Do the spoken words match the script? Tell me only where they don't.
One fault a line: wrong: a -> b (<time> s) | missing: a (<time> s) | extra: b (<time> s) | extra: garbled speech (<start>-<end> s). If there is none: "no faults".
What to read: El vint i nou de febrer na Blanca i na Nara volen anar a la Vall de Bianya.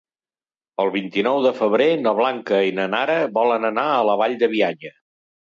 no faults